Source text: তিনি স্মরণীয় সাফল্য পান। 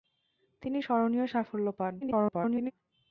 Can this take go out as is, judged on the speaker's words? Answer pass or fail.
fail